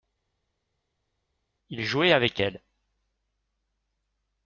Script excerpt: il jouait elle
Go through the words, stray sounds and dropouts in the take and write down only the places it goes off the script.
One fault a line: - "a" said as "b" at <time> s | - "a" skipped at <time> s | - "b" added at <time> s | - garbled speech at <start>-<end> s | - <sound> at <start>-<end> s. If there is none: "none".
- "avec" added at 2.1 s